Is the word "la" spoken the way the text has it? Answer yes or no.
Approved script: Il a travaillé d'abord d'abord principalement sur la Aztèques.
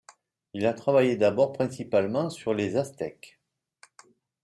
no